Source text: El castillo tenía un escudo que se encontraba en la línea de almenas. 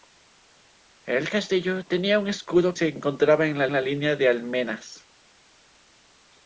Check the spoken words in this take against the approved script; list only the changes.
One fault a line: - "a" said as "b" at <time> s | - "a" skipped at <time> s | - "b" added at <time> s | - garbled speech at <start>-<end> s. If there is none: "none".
- "que" skipped at 2.8 s
- "la" added at 3.7 s